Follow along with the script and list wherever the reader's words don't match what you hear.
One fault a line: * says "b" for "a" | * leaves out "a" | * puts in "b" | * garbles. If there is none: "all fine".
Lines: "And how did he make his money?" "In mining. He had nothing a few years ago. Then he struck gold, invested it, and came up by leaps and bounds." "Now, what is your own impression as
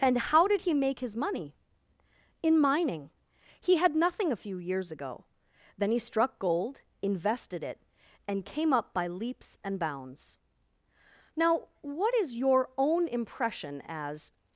all fine